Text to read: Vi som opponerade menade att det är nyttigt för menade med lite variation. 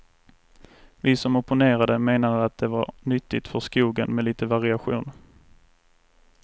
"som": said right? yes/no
yes